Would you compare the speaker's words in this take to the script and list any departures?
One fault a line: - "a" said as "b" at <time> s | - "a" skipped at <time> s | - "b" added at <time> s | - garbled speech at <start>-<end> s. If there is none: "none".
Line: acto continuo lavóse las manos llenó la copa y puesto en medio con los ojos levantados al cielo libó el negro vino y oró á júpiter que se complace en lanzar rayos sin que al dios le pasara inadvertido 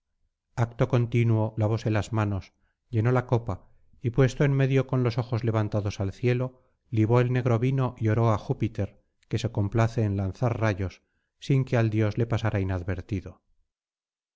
none